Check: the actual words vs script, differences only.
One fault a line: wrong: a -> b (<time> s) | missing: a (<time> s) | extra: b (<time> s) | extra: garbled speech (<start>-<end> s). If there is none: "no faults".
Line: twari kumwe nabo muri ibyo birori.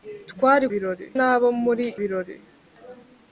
wrong: kumwe -> birori (0.7 s)
missing: ibyo (1.8 s)